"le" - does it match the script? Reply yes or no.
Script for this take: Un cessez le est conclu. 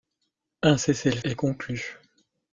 yes